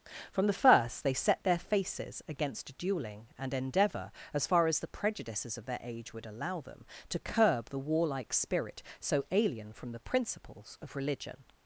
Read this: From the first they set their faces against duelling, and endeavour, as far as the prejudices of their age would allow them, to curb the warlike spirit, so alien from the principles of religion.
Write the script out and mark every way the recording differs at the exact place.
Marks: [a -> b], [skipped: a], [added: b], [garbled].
From the first they set their faces against duelling, and endeavour, as far as the prejudices of their age would allow them, to curb the warlike spirit, so alien from the principles of religion.